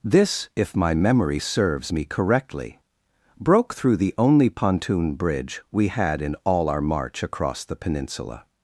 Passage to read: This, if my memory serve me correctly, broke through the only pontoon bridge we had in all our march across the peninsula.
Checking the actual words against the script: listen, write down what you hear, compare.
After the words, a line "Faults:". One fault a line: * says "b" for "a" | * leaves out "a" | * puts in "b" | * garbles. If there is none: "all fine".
This, if my memory serves me correctly, broke through the only pontoon bridge we had in all our march across the peninsula.
Faults:
* says "serves" for "serve"